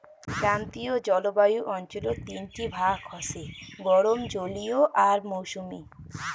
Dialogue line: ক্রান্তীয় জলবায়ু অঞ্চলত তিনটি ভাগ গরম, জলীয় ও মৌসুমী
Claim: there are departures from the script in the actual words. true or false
true